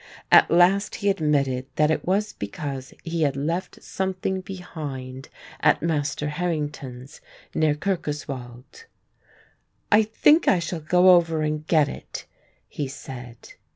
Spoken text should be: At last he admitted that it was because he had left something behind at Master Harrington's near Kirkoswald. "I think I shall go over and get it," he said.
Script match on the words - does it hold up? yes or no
yes